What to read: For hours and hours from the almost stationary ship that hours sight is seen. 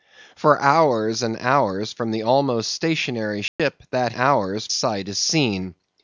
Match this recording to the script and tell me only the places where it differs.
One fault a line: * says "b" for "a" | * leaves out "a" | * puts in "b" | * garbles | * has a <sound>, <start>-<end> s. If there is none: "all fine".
* has a dropout, 3.5-3.6 s